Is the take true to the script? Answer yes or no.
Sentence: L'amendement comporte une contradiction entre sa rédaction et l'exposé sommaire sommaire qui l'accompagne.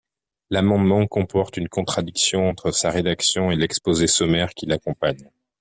no